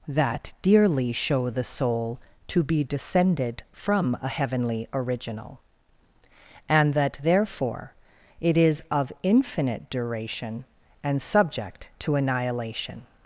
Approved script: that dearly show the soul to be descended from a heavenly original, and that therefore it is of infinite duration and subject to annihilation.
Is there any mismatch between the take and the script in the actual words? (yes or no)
no